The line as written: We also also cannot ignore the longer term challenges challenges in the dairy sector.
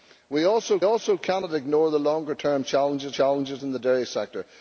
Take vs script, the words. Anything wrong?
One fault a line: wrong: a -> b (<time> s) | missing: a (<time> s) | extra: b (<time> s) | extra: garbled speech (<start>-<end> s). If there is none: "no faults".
no faults